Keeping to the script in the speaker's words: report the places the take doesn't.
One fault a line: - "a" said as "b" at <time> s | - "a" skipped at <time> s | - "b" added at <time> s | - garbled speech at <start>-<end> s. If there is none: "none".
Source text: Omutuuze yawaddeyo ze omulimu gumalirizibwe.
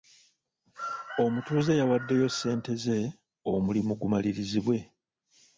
- "ssente" added at 2.3 s